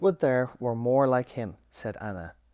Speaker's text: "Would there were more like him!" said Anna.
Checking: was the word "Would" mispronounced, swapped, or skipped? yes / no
no